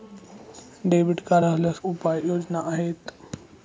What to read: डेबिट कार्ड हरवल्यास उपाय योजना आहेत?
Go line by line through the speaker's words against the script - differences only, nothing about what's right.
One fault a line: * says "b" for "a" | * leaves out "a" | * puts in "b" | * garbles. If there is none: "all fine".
all fine